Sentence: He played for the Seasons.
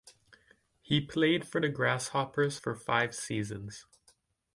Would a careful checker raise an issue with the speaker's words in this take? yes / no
yes